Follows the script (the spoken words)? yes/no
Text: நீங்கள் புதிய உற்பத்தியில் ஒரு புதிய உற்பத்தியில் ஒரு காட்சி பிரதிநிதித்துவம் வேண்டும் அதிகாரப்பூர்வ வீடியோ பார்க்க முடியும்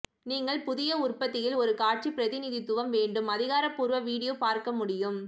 no